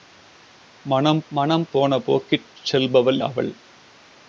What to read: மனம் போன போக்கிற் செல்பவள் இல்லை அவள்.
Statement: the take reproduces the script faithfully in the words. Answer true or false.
false